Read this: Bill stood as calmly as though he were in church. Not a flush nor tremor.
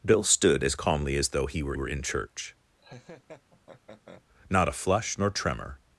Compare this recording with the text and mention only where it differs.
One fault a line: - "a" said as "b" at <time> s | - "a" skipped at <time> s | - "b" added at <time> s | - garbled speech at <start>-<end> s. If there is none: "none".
- "were" added at 1.7 s